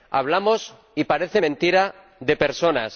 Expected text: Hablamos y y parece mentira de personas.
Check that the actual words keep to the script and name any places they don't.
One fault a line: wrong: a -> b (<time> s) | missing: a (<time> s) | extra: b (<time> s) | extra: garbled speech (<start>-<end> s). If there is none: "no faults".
missing: y (1.0 s)